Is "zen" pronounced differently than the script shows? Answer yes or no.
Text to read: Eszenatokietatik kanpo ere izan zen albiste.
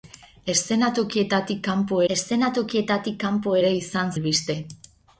yes